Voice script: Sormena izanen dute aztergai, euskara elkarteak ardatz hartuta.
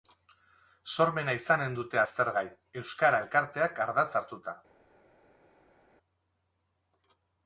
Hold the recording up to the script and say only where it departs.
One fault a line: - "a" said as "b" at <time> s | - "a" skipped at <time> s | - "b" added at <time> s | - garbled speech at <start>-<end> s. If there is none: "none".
none